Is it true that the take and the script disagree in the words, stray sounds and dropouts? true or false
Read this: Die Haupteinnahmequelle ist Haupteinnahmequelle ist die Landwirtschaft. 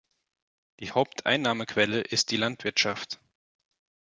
true